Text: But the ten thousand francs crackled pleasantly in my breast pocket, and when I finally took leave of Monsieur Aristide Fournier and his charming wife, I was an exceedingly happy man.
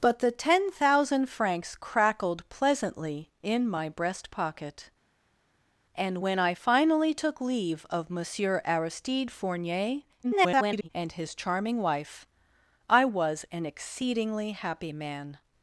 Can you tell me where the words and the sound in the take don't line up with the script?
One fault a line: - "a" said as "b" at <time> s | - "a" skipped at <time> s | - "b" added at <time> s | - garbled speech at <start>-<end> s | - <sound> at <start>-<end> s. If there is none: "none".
- garbled speech at 10.2-10.9 s